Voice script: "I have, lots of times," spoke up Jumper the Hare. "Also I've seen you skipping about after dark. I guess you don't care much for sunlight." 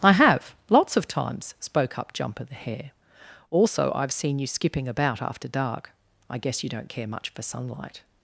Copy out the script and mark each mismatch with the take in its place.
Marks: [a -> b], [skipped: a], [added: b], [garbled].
"I have, lots of times," spoke up Jumper the Hare. "Also I've seen you skipping about after dark. I guess you don't care much for sunlight."